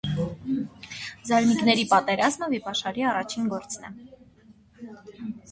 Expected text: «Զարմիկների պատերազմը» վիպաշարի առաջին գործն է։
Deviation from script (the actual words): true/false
false